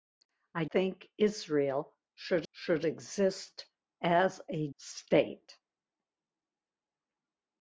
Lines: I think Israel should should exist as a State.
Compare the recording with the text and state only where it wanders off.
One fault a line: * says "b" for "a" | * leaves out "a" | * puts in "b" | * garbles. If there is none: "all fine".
all fine